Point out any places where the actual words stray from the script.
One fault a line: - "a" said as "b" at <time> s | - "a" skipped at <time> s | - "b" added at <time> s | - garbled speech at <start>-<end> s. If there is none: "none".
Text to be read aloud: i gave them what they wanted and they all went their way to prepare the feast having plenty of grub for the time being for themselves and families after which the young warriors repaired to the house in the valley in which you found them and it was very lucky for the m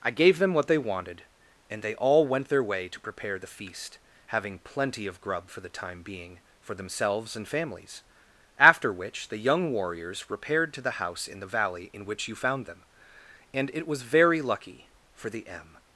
none